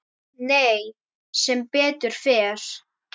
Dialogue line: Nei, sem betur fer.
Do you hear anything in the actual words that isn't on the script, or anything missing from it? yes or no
no